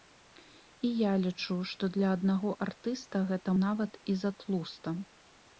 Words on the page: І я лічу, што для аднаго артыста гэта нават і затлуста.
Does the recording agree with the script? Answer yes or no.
yes